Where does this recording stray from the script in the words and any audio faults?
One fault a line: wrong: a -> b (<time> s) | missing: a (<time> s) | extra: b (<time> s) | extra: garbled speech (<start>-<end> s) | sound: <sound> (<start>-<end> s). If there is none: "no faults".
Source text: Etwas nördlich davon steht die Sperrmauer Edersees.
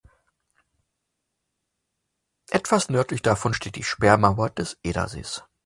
extra: des (4.5 s)